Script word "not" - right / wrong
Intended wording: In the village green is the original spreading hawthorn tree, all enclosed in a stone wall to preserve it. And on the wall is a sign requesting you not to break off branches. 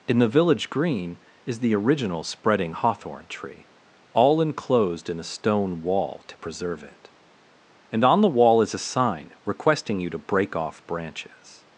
wrong